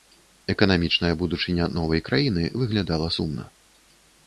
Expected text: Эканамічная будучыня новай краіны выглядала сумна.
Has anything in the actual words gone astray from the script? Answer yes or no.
no